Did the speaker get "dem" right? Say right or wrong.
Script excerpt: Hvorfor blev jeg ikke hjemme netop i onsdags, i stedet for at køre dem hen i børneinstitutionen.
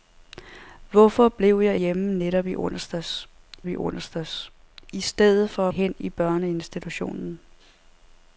wrong